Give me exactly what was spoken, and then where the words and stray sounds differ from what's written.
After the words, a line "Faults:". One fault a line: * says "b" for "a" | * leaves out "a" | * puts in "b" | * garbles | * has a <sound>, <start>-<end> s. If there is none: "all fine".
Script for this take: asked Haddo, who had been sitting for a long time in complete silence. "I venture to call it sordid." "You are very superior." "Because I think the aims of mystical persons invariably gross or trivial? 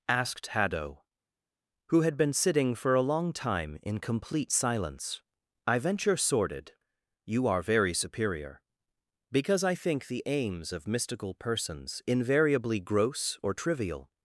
asked Haddo, who had been sitting for a long time in complete silence. "I venture sordid." "You are very superior." "Because I think the aims of mystical persons invariably gross or trivial?
Faults:
* leaves out "to call it"